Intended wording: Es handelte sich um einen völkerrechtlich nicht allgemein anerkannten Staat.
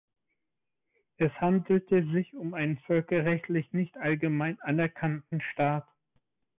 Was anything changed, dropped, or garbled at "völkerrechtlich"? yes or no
no